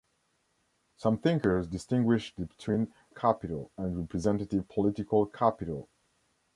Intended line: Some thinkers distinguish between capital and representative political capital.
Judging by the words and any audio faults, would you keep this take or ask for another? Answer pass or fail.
pass